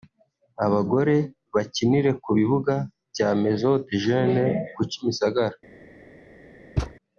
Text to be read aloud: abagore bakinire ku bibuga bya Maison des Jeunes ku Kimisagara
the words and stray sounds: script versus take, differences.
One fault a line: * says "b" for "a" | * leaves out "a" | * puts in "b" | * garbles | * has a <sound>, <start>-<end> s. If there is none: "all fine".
* has a thud, 6.8-6.9 s